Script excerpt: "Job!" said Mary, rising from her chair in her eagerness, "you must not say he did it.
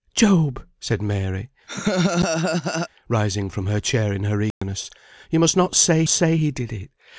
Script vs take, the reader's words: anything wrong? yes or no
yes